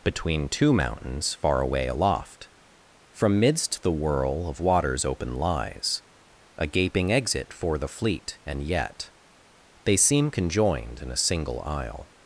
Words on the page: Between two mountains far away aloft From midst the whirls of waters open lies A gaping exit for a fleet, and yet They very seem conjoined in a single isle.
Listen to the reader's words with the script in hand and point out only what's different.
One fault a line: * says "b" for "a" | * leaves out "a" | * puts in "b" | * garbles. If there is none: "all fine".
* says "whirl" for "whirls"
* says "the" for "a"
* leaves out "very"